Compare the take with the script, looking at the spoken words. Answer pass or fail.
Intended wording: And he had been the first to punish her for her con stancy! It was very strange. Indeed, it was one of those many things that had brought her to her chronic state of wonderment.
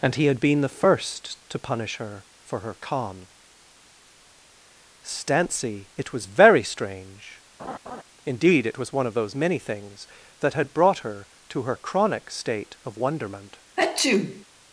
pass